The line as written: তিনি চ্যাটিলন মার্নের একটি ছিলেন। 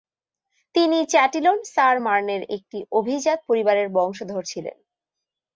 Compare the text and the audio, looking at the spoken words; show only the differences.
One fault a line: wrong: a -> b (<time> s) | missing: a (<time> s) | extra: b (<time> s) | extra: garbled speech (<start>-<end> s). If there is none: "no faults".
extra: সার (1.7 s)
extra: অভিজাত পরিবারের বংশধর (2.9 s)